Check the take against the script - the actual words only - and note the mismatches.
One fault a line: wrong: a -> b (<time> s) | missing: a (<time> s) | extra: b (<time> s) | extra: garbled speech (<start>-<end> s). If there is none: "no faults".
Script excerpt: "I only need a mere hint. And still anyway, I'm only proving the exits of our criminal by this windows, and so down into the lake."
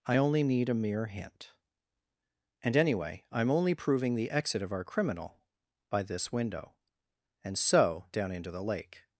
missing: still (2.8 s)
wrong: exits -> exit (4.3 s)
wrong: windows -> window (6.3 s)